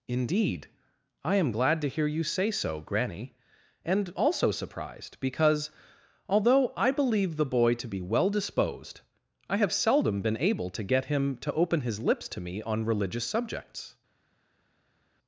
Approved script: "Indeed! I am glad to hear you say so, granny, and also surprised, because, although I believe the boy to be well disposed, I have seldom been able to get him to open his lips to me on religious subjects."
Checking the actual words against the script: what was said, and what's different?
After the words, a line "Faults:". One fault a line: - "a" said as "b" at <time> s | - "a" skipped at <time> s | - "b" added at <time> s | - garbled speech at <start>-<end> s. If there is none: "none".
"Indeed! I am glad to hear you say so, granny, and also surprised, because, although I believe the boy to be well disposed, I have seldom been able to get him to open his lips to me on religious subjects."
Faults:
none